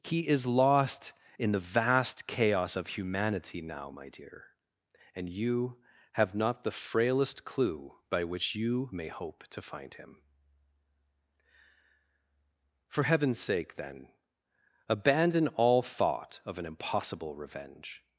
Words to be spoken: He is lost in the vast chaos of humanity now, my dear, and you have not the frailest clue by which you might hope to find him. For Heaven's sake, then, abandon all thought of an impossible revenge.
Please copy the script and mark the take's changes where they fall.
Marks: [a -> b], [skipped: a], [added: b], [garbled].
He is lost in the vast chaos of humanity now, my dear, and you have not the frailest clue by which you [might -> may] hope to find him. For Heaven's sake, then, abandon all thought of an impossible revenge.